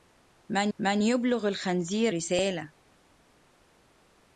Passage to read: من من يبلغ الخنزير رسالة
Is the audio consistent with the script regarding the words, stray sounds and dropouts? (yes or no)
yes